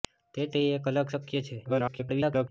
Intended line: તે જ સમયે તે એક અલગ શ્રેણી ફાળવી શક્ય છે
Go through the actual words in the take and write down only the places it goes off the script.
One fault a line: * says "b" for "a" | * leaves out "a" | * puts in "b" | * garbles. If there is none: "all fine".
* leaves out "સમયે"
* leaves out "શ્રેણી ફાળવી"
* garbles